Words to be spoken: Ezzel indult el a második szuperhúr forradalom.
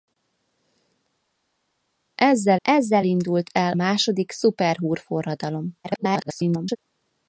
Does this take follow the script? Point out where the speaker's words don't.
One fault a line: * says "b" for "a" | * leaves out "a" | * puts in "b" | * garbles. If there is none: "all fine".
* puts in "ezzel"
* leaves out "a"
* garbles